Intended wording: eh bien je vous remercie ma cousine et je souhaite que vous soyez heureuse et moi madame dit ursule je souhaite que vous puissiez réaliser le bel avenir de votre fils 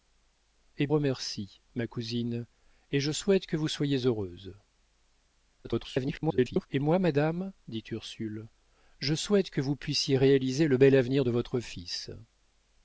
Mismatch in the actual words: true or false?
true